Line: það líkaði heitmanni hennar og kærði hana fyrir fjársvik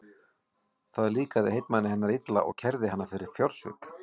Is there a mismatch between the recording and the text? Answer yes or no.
yes